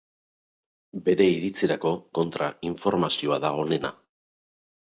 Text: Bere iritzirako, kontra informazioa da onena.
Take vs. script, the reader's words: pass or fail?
pass